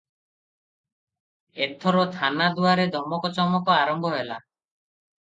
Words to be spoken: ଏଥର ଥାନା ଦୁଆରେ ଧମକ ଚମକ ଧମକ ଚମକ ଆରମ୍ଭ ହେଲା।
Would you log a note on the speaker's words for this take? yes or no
yes